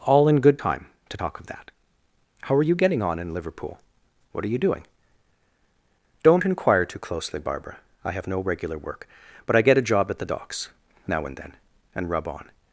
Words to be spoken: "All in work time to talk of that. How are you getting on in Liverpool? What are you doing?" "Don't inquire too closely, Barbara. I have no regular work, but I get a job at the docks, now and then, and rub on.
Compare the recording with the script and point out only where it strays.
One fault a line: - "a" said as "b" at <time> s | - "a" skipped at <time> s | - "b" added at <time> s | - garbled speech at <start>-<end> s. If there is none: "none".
- "work" said as "good" at 0.4 s